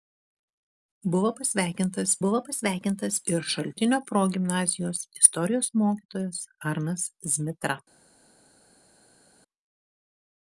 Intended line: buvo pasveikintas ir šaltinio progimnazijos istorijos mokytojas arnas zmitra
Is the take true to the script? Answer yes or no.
no